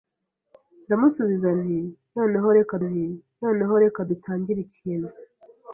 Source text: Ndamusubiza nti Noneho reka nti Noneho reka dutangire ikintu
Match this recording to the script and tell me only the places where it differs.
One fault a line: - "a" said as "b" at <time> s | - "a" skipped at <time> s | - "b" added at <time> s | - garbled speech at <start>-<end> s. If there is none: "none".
none